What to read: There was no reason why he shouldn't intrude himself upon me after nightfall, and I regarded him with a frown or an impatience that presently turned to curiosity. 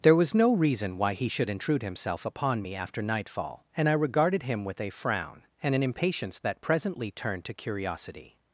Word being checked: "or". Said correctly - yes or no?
no